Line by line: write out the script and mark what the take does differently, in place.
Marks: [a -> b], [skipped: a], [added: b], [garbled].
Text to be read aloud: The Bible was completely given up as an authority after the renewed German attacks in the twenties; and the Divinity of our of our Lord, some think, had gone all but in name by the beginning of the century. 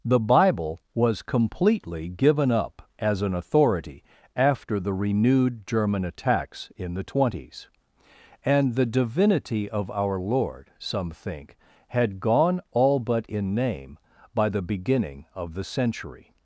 The Bible was completely given up as an authority after the renewed German attacks in the twenties; and the Divinity of our [skipped: of our] Lord, some think, had gone all but in name by the beginning of the century.